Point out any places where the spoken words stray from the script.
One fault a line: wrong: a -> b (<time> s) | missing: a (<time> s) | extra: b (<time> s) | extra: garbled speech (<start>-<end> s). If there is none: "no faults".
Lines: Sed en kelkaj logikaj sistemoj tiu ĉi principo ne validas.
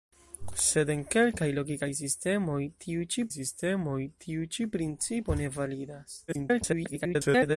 extra: sistemoj tiu ĉi (3.4 s)
extra: garbled speech (6.3-7.6 s)